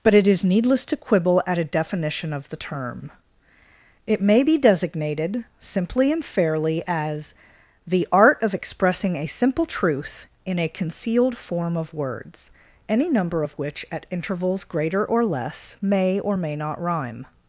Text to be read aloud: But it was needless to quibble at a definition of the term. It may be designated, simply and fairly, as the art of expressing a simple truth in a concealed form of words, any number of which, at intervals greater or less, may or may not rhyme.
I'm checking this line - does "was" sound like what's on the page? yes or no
no